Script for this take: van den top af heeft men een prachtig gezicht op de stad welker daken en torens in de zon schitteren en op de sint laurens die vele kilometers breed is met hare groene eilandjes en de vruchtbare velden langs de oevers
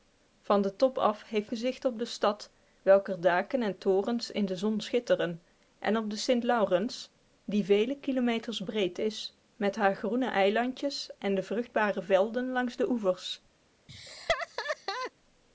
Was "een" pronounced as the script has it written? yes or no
no